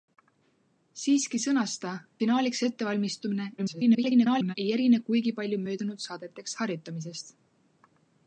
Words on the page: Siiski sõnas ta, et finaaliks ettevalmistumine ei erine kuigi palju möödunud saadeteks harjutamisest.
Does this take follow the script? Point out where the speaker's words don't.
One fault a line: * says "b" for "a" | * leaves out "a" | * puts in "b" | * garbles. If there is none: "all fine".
* leaves out "et"
* garbles